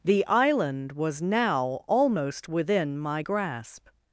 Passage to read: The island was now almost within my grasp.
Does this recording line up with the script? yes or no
yes